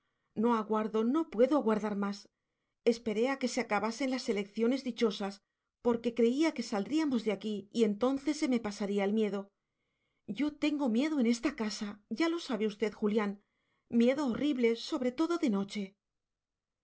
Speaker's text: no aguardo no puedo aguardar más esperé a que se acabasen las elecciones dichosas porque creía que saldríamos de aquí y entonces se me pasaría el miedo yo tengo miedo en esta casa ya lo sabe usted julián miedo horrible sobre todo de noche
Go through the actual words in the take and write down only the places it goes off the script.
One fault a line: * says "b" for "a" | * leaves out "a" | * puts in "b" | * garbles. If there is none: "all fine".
all fine